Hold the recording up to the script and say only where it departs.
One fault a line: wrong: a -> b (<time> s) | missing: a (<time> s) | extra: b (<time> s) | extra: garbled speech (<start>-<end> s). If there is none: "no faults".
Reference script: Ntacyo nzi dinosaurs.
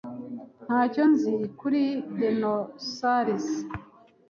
extra: kuri (1.6 s)